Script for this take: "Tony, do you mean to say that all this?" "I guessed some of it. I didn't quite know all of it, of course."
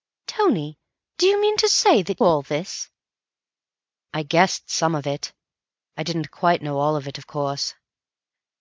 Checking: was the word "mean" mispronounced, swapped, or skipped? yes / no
no